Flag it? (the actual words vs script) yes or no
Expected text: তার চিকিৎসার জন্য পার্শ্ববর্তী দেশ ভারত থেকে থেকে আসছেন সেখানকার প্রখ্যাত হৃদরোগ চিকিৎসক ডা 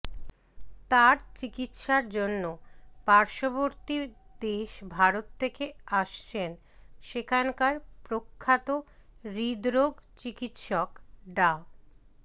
yes